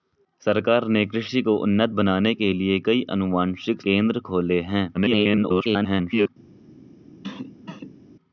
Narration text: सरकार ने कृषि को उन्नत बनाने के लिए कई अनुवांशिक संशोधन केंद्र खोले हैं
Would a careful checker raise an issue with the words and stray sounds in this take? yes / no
yes